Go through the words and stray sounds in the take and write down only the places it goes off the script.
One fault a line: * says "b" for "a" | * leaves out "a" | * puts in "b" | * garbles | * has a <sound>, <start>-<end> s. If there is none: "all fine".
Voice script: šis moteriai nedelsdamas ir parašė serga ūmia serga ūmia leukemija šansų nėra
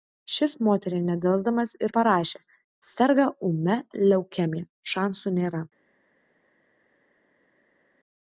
* leaves out "serga ūmia"